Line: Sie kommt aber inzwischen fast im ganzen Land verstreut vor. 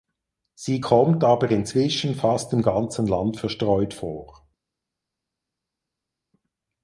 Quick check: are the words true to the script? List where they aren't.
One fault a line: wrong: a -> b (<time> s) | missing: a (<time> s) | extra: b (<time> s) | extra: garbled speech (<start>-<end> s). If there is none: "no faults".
no faults